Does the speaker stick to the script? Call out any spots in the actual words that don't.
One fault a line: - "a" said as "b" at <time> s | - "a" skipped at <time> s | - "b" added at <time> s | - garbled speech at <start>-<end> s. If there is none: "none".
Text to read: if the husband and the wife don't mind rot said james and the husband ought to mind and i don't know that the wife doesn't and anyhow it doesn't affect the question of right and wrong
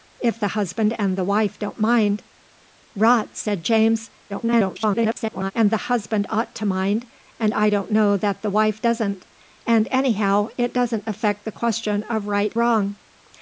- garbled speech at 4.3-5.5 s
- "and" skipped at 12.6 s